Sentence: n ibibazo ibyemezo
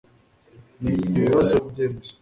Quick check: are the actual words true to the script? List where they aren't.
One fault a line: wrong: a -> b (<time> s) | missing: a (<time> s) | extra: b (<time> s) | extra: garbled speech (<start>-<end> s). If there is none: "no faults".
no faults